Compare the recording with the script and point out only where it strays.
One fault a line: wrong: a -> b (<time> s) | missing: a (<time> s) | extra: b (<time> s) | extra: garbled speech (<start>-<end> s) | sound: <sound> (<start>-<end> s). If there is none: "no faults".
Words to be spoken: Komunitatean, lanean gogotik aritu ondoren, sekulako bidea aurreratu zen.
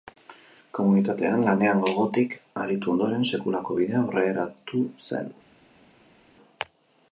no faults